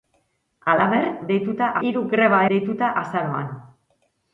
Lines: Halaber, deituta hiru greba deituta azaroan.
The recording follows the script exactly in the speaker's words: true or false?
true